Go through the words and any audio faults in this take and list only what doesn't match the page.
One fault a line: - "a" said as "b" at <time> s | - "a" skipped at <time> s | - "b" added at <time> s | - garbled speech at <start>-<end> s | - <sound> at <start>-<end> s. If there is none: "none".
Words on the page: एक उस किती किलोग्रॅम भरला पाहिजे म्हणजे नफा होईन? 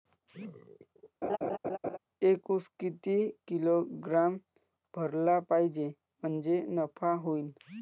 - laugh at 1.2-2.0 s